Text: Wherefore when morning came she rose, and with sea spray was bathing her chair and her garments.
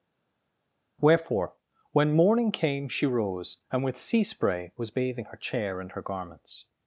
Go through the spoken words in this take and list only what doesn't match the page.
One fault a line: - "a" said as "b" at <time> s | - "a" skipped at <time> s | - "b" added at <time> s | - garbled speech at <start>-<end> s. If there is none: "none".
none